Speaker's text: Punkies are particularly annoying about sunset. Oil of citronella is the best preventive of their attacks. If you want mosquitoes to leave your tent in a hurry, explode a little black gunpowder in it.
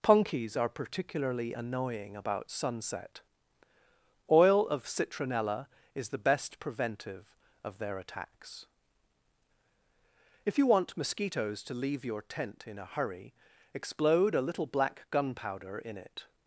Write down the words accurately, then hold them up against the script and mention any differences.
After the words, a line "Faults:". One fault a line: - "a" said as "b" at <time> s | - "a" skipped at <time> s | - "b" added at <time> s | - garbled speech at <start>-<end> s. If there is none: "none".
Punkies are particularly annoying about sunset. Oil of citronella is the best preventive of their attacks. If you want mosquitoes to leave your tent in a hurry, explode a little black gunpowder in it.
Faults:
none